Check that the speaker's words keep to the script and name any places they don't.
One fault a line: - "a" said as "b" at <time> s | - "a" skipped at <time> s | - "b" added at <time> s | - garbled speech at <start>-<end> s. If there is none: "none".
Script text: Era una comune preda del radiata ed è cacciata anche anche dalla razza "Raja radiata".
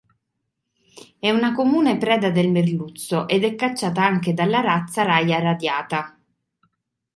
- "Era" said as "È" at 1.2 s
- "radiata" said as "merluzzo" at 2.5 s
- "anche" skipped at 4.3 s